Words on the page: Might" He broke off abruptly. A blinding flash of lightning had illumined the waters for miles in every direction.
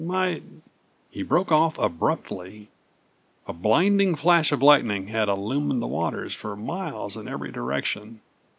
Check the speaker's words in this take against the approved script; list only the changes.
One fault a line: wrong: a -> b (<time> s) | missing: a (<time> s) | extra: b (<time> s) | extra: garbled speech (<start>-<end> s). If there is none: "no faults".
no faults